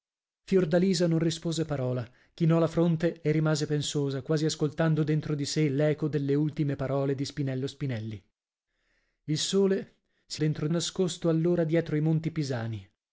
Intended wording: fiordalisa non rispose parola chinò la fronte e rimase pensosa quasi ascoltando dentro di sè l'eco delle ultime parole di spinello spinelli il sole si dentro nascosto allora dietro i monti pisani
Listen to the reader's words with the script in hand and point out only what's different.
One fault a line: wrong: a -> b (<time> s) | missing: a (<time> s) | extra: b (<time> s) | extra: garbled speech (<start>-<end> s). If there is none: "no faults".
no faults